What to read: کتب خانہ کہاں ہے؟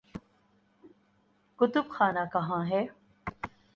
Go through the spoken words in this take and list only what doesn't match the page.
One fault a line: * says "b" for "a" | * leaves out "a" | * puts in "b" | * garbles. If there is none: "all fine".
all fine